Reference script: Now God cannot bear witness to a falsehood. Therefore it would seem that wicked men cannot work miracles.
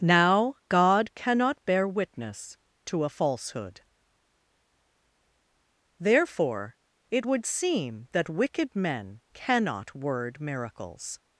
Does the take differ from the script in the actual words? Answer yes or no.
yes